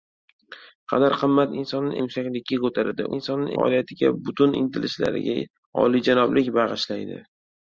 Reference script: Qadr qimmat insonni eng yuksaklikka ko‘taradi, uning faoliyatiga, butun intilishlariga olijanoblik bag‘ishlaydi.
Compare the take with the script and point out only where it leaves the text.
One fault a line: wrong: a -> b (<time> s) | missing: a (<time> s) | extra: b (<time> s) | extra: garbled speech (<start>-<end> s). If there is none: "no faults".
missing: eng (2.0 s)
wrong: uning -> insonni (3.2 s)